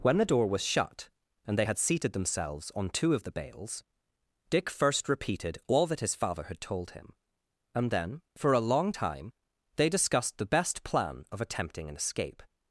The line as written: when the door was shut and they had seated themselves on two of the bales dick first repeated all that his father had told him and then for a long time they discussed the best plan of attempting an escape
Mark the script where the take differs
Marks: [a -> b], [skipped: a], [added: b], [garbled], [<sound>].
when the door was shut and they had seated themselves on two of the bales dick first repeated all that his father had told him and then for a long time they discussed the best plan of attempting an escape